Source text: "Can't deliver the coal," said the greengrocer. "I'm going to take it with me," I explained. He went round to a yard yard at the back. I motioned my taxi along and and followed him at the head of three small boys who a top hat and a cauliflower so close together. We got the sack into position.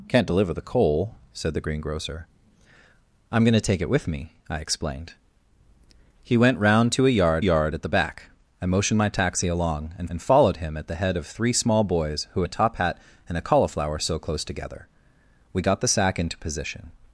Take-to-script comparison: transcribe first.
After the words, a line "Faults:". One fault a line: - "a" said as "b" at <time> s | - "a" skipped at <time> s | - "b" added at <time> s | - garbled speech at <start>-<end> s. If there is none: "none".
"Can't deliver the coal," said the greengrocer. "I'm going to take it with me," I explained. He went round to a yard yard at the back. I motioned my taxi along and and followed him at the head of three small boys who a top hat and a cauliflower so close together. We got the sack into position.
Faults:
none